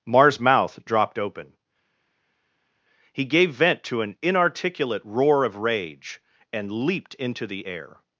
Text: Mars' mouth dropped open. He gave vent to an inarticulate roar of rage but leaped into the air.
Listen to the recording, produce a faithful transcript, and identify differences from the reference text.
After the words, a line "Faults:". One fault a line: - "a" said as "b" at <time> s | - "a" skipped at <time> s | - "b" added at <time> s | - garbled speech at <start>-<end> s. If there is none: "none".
Mars' mouth dropped open. He gave vent to an inarticulate roar of rage and leaped into the air.
Faults:
- "but" said as "and" at 6.5 s